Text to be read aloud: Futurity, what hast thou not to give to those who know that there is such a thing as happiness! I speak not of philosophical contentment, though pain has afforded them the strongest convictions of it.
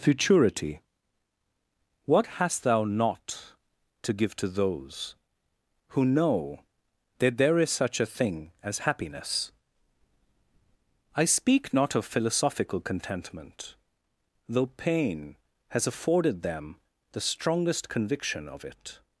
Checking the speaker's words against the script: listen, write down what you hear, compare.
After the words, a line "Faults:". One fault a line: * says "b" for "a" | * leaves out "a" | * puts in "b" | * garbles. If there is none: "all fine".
Futurity, what hast thou not to give to those who know that there is such a thing as happiness! I speak not of philosophical contentment, though pain has afforded them the strongest conviction of it.
Faults:
* says "conviction" for "convictions"